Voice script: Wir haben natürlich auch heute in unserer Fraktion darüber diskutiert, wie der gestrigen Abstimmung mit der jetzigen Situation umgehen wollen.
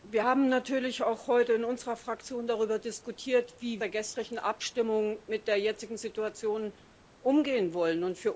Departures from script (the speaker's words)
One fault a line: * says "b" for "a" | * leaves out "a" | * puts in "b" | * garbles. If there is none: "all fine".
all fine